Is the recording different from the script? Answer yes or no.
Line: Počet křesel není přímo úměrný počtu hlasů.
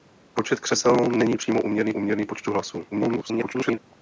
yes